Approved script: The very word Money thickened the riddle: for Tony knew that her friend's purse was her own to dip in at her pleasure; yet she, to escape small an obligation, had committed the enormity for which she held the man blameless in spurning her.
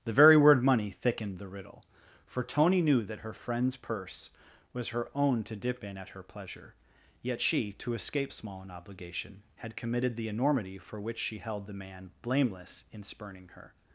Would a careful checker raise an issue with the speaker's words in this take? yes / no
no